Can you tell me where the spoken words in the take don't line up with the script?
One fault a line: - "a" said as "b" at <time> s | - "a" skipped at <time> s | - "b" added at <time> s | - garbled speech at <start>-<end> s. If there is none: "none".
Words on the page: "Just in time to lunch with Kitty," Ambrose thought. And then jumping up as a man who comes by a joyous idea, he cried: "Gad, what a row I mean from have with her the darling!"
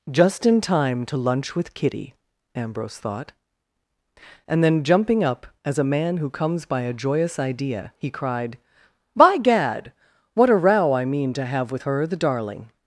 - "By" added at 9.2 s
- "from" said as "to" at 11.3 s